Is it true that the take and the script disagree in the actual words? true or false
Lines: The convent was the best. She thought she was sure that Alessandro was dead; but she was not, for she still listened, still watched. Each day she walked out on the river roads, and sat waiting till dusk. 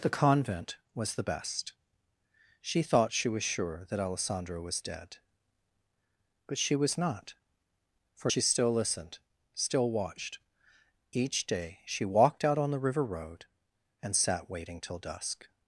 true